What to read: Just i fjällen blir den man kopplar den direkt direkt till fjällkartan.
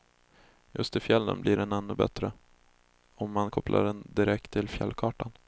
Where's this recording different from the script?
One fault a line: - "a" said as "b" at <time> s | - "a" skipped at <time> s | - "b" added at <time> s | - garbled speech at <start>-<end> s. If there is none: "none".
- "ännu bättre om" added at 1.7 s
- "direkt" skipped at 4.5 s